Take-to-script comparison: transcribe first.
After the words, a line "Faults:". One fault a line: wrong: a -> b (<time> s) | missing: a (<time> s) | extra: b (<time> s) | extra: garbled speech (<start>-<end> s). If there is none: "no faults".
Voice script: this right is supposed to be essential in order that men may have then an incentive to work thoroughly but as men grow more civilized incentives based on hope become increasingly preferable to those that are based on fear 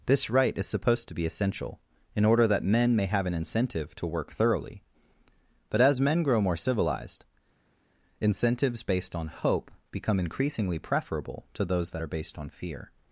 this right is supposed to be essential in order that men may have an incentive to work thoroughly but as men grow more civilized incentives based on hope become increasingly preferable to those that are based on fear
Faults:
missing: then (3.2 s)